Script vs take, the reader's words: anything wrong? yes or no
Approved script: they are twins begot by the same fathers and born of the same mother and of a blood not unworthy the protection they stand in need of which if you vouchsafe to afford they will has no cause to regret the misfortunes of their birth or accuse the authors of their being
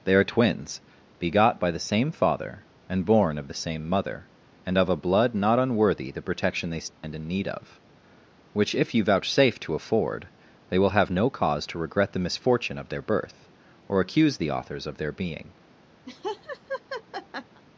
yes